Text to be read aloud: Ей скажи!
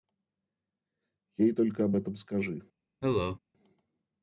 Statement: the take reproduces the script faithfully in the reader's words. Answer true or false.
false